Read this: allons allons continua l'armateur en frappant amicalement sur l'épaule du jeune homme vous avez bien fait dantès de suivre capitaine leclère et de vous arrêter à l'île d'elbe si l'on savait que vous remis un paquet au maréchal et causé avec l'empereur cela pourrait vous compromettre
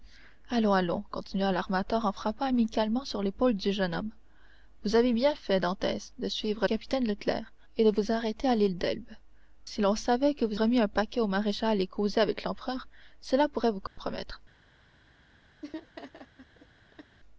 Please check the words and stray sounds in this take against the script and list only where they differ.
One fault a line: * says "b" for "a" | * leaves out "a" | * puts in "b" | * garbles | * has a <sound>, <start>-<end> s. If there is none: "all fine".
* has a dropout, 13.9-14.0 s
* has a laugh, 15.6-17.2 s